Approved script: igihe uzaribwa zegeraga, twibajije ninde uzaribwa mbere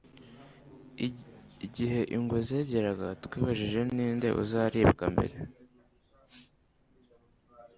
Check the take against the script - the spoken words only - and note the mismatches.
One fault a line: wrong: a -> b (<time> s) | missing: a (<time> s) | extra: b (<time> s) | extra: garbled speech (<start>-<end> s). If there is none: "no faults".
wrong: uzaribwa -> ingwe (2.1 s)